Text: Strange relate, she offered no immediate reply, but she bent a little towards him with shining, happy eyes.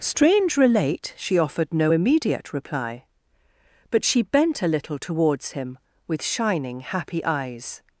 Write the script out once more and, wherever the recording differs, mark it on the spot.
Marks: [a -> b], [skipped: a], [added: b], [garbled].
Strange relate, she offered no immediate reply, but she bent a little towards him with shining, happy eyes.